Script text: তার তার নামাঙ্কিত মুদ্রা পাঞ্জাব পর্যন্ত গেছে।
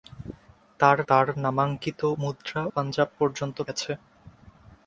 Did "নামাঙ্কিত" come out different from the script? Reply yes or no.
no